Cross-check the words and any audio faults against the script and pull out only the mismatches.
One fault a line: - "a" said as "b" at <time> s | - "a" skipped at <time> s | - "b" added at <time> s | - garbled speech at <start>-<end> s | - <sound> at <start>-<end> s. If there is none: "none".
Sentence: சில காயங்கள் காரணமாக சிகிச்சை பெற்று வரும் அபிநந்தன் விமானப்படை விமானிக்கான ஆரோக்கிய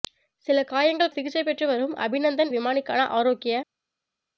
- "காரணமாக" skipped at 1.1 s
- "விமானப்படை" skipped at 2.5 s